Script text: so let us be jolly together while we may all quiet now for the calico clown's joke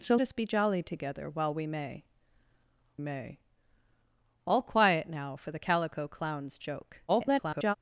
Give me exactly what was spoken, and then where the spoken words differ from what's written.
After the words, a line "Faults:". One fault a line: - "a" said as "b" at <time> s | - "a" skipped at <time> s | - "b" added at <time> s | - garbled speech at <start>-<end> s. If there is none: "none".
so us be jolly together while we may may all quiet now for the calico clown's joke [garbled]
Faults:
- "let" skipped at 0.1 s
- "may" added at 3.0 s
- garbled speech at 7.1-7.7 s